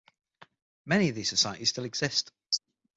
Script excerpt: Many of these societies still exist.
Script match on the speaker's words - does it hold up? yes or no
yes